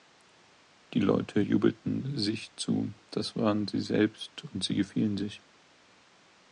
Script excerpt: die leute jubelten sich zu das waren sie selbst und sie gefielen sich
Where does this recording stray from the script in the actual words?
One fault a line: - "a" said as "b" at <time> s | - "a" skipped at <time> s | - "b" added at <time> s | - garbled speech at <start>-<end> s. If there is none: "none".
none